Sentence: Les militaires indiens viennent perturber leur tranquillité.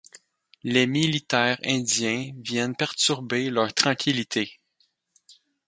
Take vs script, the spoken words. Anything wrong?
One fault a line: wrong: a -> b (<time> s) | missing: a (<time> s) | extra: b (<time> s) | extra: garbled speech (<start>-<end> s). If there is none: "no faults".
no faults